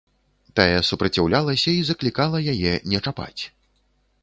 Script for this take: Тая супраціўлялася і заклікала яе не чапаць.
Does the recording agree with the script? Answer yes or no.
yes